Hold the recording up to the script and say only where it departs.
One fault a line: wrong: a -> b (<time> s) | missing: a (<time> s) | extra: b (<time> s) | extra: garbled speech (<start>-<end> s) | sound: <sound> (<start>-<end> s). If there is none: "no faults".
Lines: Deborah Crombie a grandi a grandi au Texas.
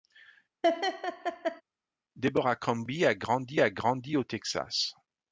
sound: laugh (0.6-1.6 s)